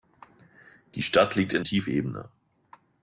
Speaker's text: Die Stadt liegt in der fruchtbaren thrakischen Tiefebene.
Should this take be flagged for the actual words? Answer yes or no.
yes